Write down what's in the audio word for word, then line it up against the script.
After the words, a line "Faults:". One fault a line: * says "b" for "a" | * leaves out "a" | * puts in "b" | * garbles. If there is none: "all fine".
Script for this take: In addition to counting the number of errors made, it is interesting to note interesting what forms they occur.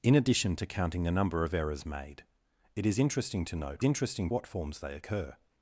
In addition to counting the number of errors made, it is interesting to note interesting what forms they occur.
Faults:
all fine